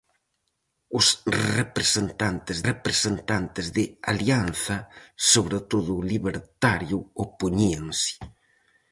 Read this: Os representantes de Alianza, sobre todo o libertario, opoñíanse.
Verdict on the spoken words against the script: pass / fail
fail